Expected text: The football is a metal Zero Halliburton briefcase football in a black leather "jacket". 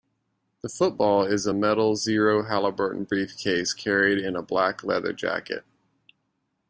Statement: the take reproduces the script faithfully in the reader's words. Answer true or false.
false